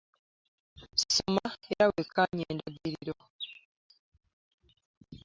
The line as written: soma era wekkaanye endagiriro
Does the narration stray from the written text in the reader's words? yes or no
no